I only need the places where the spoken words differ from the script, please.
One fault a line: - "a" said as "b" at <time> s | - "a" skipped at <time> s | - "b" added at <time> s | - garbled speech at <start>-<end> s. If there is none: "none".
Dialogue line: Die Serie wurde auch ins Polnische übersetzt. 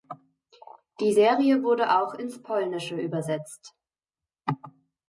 none